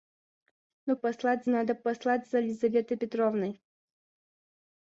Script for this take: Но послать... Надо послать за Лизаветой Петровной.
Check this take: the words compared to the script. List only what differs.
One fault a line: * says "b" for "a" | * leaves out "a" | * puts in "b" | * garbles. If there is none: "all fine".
all fine